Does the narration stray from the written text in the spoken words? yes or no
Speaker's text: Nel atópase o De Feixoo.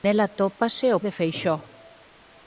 no